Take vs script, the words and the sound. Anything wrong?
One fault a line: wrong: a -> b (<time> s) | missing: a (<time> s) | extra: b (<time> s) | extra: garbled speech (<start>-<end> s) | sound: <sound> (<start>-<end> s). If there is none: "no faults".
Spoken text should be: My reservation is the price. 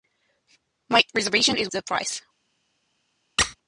sound: squeak (3.4-3.6 s)